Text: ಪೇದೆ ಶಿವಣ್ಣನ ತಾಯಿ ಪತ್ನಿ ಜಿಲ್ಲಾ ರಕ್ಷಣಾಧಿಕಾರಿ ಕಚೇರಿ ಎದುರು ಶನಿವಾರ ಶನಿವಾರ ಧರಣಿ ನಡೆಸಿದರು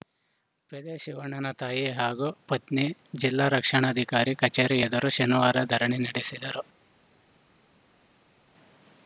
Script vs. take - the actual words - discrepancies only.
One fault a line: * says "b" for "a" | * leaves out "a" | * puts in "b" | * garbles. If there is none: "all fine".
* puts in "ಹಾಗೂ"
* leaves out "ಶನಿವಾರ"